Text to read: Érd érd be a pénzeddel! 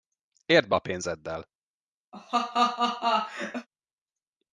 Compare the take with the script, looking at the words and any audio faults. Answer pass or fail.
fail